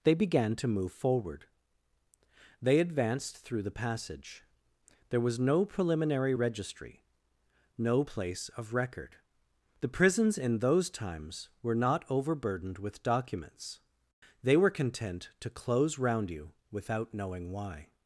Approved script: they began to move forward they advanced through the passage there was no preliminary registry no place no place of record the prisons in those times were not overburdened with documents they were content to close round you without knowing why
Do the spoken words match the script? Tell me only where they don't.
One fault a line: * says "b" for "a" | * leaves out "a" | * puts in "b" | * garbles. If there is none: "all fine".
* leaves out "no place"